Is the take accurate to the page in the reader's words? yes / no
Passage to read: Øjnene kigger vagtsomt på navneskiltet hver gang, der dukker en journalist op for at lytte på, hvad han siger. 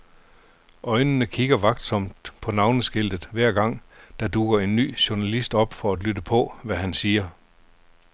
no